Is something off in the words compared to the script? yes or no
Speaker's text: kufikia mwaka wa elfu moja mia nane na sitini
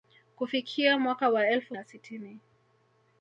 yes